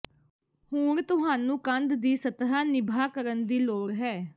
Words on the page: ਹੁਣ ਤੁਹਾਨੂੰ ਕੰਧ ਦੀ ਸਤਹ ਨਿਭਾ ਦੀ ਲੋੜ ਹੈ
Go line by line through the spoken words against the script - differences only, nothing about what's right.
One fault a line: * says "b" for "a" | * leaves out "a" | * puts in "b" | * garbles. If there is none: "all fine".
* puts in "ਕਰਨ"